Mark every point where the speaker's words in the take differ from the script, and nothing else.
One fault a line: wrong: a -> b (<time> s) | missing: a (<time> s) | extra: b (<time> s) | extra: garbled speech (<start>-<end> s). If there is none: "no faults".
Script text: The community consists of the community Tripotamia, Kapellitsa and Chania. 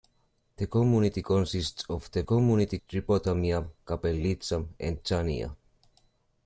no faults